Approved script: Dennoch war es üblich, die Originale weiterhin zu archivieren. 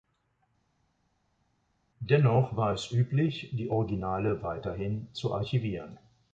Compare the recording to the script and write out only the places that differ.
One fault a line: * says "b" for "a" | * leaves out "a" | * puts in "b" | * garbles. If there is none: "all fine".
all fine